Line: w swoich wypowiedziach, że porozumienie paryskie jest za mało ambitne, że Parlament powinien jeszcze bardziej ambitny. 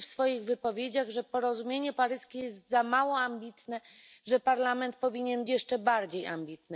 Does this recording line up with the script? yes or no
yes